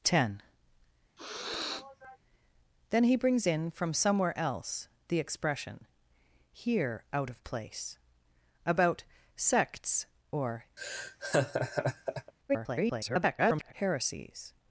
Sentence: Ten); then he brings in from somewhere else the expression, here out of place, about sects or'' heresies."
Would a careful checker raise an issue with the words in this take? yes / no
yes